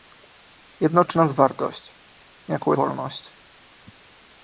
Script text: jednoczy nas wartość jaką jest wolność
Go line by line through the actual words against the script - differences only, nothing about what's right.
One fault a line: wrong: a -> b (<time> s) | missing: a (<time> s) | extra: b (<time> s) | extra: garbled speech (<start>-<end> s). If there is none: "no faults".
missing: jest (2.7 s)